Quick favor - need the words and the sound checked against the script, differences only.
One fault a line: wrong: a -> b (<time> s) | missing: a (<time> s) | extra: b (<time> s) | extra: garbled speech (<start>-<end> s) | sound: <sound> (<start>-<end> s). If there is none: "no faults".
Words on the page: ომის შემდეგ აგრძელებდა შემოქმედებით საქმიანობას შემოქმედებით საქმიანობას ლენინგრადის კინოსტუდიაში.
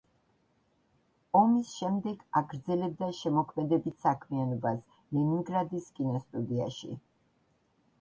missing: შემოქმედებით საქმიანობას (4.9 s)